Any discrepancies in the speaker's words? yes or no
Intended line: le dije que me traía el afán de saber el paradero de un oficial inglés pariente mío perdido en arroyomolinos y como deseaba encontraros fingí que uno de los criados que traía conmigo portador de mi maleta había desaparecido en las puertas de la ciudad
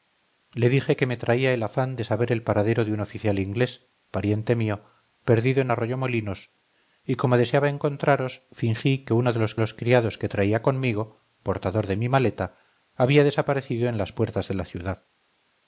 yes